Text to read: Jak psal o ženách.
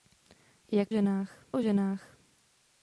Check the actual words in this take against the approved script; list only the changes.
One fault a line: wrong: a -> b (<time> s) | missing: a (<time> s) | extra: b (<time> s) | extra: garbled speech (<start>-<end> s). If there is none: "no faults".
wrong: psal -> ženách (0.9 s)